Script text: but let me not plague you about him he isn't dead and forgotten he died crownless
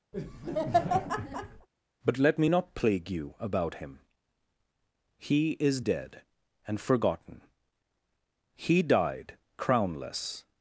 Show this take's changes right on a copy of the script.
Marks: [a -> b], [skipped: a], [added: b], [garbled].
but let me not plague you about him he [isn't -> is] dead and forgotten he died crownless